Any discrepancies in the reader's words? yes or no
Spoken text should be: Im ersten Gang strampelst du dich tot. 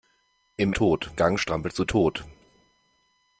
yes